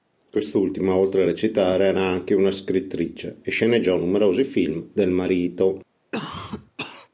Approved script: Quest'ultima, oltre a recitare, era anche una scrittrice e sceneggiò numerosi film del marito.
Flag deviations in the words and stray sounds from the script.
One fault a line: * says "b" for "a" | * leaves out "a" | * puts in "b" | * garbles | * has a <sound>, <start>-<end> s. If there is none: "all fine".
* has a cough, 6.1-7.1 s